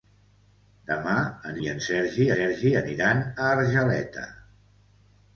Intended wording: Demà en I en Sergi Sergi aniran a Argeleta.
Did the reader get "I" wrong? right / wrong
right